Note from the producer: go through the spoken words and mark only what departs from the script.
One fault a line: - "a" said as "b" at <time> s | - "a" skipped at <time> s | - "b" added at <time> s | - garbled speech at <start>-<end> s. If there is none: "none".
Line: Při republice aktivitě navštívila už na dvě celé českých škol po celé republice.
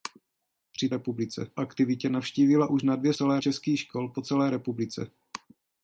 none